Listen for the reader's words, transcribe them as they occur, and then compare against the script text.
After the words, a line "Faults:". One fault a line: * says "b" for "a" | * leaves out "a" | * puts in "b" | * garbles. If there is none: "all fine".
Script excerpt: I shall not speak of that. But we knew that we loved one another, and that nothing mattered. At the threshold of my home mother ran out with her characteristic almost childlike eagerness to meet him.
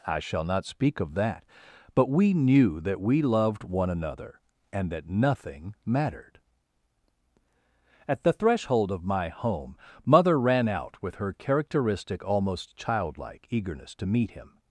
I shall not speak of that. But we knew that we loved one another, and that nothing mattered. At the threshold of my home mother ran out with her characteristic almost childlike eagerness to meet him.
Faults:
all fine